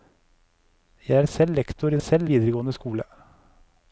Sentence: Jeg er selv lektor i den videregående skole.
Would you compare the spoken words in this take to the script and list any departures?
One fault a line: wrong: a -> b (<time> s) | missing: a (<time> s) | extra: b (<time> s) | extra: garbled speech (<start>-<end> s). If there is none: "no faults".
wrong: den -> selv (2.0 s)